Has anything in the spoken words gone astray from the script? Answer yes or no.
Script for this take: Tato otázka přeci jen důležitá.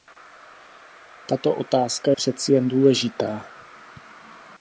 no